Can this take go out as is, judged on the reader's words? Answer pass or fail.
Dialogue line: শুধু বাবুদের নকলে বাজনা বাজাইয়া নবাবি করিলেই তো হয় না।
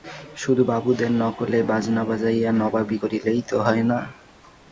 pass